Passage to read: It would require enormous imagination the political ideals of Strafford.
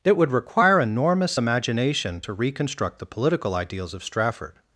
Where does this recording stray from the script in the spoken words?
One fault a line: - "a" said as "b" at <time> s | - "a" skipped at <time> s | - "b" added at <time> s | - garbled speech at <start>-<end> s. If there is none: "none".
- "to reconstruct" added at 2.2 s